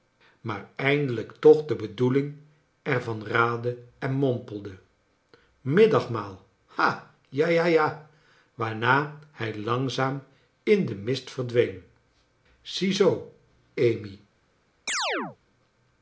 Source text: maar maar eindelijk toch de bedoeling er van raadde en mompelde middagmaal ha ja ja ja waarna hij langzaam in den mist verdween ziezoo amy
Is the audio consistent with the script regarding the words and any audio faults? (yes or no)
no